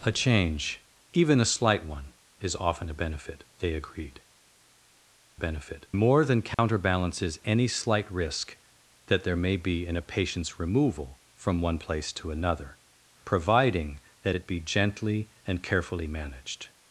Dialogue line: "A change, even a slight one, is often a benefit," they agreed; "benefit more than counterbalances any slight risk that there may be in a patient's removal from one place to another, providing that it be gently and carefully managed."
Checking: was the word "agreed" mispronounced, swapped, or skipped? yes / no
no